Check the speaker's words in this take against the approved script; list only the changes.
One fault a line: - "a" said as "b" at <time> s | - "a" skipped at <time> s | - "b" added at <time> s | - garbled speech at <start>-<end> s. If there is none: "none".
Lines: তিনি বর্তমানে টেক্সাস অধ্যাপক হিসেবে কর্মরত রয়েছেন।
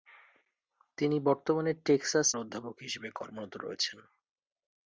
none